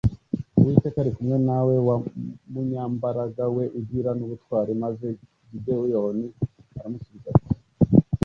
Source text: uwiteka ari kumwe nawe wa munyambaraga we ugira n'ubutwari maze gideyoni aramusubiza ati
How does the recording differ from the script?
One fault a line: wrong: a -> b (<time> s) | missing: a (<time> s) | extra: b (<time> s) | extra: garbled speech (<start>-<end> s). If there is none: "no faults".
no faults